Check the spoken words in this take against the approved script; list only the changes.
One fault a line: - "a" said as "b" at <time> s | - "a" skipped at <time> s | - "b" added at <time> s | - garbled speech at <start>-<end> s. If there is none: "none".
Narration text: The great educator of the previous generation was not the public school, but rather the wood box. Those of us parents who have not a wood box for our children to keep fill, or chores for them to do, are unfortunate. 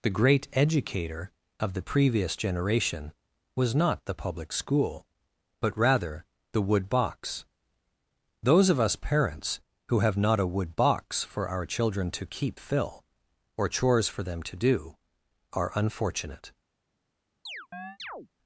none